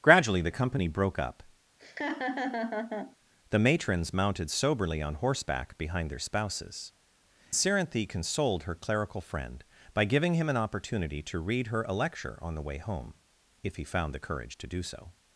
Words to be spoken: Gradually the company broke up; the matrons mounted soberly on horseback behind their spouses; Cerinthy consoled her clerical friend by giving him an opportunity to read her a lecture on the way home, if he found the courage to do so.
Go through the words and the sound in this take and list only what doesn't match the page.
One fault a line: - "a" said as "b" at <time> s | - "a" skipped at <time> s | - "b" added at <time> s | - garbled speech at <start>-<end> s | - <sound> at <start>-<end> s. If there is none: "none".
- laugh at 1.8-3.2 s